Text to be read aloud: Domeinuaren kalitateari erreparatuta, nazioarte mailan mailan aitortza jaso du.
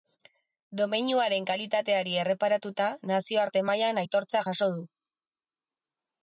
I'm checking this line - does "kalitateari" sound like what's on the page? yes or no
yes